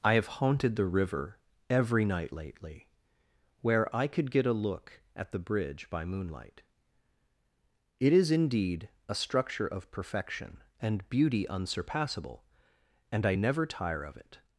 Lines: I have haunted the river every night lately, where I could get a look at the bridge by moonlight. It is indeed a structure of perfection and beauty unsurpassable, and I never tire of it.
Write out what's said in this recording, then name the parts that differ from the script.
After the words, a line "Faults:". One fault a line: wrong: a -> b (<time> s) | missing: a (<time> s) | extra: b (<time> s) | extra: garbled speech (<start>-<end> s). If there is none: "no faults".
I have haunted the river every night lately, where I could get a look at the bridge by moonlight. It is indeed a structure of perfection and beauty unsurpassable, and I never tire of it.
Faults:
no faults